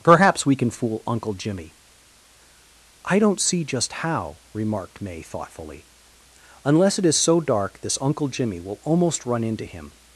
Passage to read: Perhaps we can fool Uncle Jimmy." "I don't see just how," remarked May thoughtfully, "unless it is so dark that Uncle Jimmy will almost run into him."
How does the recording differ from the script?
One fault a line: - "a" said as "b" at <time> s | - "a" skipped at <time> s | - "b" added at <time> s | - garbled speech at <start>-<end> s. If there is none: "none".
- "that" said as "this" at 7.8 s